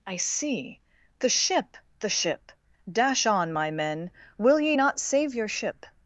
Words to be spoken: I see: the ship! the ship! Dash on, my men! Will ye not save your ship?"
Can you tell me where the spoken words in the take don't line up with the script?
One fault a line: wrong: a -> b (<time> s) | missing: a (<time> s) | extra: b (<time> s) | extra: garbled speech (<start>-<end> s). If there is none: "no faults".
no faults